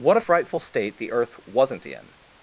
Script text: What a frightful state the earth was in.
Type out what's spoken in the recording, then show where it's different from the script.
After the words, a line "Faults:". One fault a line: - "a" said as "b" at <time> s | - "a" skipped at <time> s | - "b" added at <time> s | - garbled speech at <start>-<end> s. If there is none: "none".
What a frightful state the earth wasn't in.
Faults:
- "was" said as "wasn't" at 1.4 s